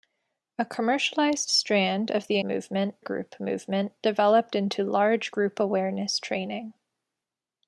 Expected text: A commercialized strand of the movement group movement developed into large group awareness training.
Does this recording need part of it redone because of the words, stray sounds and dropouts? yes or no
no